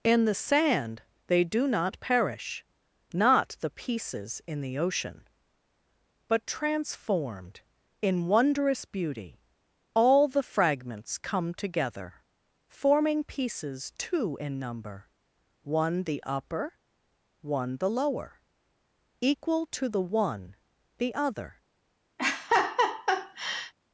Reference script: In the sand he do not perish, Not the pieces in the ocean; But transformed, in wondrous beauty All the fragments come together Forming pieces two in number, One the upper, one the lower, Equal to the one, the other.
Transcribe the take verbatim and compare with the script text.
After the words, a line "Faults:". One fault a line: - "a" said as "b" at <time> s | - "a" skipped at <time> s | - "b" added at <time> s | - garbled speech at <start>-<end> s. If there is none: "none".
In the sand they do not perish, Not the pieces in the ocean; But transformed, in wondrous beauty All the fragments come together Forming pieces two in number, One the upper, one the lower, Equal to the one, the other.
Faults:
- "he" said as "they" at 1.3 s